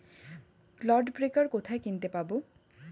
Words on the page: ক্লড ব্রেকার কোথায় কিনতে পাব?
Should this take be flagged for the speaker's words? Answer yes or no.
no